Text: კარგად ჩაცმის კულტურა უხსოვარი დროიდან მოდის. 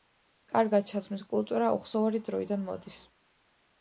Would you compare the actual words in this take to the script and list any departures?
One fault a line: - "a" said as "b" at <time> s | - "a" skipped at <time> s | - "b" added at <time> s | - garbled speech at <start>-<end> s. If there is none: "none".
none